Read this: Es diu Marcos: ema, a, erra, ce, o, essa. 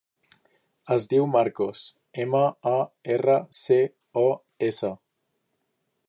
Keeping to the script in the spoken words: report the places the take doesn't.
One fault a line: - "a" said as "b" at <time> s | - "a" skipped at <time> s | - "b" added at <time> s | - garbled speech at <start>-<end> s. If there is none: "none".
none